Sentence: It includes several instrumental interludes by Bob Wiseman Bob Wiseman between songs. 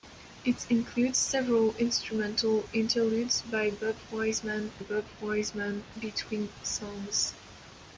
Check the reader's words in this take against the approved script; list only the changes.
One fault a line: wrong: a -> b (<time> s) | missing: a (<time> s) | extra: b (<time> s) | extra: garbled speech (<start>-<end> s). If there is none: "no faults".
no faults